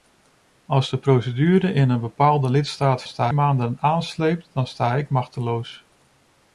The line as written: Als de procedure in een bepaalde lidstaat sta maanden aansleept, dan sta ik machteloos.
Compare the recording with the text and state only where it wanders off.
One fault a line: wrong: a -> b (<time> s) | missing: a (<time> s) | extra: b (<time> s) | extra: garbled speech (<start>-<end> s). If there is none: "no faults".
no faults